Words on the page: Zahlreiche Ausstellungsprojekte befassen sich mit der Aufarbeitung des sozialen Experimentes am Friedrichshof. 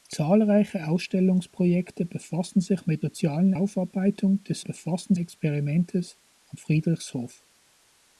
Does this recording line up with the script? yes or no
no